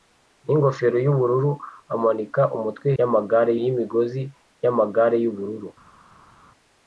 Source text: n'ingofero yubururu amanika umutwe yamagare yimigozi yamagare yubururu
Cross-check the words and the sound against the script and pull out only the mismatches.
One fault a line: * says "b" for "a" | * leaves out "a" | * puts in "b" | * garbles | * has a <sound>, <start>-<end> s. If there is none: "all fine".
all fine